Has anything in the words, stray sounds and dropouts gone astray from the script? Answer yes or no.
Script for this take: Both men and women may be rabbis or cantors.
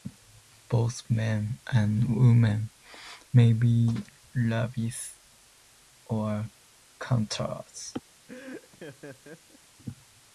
yes